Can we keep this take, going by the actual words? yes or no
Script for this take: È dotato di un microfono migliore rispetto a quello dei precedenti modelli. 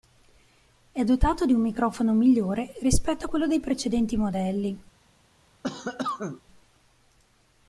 yes